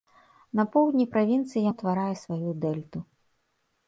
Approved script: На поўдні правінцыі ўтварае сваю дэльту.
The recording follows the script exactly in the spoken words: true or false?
true